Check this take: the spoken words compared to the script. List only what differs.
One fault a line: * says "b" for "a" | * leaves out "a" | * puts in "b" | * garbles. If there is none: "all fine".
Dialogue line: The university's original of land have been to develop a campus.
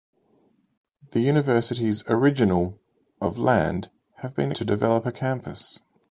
all fine